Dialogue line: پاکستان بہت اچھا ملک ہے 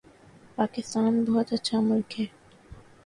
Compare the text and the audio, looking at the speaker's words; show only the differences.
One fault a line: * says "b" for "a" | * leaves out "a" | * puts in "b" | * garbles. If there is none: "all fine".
all fine